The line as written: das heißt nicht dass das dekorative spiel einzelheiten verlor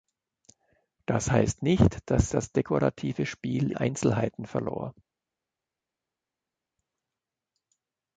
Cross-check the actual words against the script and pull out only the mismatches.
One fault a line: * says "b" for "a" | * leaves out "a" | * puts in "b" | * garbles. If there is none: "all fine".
all fine